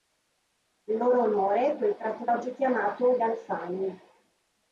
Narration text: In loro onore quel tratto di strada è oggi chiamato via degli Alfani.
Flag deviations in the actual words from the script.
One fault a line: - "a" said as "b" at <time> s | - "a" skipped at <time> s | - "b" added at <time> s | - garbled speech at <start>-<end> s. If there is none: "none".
- "di strada è" skipped at 2.2 s
- "via degli" skipped at 3.2 s